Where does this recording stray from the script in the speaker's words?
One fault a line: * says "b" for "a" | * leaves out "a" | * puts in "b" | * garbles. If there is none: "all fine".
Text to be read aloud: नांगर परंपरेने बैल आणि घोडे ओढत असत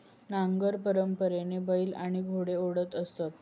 all fine